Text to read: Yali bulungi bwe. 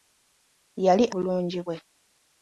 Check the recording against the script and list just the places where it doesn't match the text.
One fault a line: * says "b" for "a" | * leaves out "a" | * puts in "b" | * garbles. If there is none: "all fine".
all fine